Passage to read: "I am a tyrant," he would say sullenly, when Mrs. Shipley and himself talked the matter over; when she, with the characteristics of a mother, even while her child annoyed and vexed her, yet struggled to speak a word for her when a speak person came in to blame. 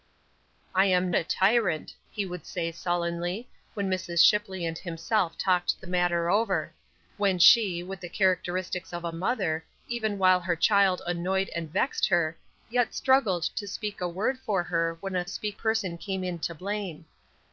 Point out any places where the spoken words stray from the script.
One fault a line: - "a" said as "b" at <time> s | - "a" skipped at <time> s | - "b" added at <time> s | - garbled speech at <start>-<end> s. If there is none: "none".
none